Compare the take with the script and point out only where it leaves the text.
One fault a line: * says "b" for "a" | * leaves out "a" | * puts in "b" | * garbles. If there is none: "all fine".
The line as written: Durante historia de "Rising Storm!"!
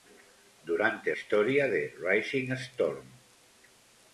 all fine